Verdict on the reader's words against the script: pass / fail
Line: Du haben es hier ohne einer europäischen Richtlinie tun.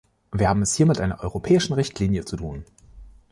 fail